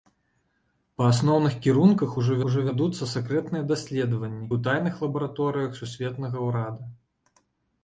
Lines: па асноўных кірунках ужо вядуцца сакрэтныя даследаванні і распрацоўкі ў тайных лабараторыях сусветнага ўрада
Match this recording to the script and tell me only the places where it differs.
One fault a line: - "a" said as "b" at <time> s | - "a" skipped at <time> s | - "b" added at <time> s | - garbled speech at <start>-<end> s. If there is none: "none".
- "ужо" added at 2.5 s
- "і распрацоўкі" skipped at 4.5 s